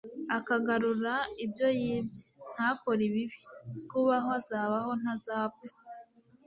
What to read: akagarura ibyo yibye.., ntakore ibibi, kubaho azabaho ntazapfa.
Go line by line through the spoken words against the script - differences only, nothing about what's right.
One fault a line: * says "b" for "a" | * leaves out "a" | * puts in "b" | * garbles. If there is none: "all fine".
all fine